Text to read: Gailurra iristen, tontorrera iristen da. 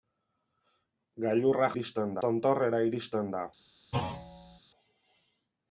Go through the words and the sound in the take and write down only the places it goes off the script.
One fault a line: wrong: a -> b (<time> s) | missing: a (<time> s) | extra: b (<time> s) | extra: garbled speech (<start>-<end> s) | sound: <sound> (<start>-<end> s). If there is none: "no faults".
sound: thud (3.9-4.6 s)